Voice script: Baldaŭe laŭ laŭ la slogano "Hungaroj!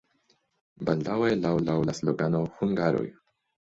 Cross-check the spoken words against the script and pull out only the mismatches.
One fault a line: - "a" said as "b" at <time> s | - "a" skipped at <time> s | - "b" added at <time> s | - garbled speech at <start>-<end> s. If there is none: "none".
none